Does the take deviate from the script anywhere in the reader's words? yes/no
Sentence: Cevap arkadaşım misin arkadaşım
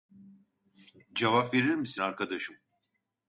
yes